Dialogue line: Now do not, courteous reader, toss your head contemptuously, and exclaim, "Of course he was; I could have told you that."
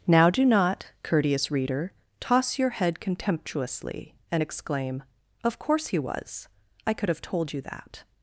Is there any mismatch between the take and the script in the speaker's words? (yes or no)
no